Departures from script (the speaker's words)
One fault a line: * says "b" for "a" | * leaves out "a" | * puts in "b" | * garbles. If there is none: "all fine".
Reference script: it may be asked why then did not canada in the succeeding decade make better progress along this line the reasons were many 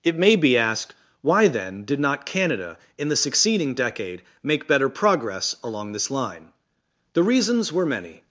all fine